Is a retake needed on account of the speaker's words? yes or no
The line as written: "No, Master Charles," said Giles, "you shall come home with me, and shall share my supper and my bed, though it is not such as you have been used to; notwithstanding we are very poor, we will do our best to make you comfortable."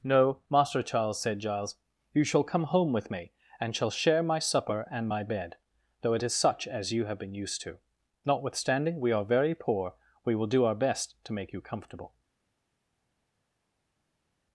yes